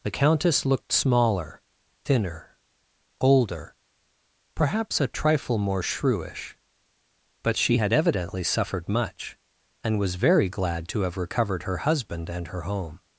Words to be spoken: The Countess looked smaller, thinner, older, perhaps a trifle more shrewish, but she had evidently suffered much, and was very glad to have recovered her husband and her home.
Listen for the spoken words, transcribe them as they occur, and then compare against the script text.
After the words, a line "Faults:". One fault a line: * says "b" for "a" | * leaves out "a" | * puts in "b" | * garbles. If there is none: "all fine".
The Countess looked smaller, thinner, older, perhaps a trifle more shrewish, but she had evidently suffered much, and was very glad to have recovered her husband and her home.
Faults:
all fine